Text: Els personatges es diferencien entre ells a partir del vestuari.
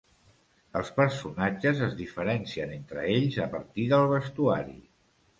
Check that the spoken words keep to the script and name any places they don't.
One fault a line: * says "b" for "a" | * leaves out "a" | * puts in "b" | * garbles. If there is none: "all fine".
all fine